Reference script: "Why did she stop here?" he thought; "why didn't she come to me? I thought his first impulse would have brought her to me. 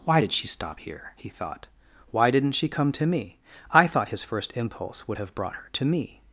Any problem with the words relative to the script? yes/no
no